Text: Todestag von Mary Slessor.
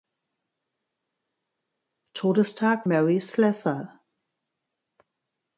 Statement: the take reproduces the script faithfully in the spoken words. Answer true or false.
false